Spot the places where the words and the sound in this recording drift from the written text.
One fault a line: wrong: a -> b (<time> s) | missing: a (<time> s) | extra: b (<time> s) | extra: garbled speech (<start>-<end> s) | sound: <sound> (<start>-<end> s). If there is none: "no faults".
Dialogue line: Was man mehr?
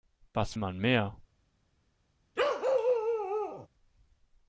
sound: bark (2.4-3.7 s)